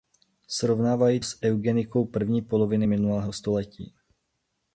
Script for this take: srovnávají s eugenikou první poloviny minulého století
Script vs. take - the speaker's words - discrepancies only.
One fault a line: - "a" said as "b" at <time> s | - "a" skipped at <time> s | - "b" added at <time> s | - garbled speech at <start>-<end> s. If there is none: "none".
none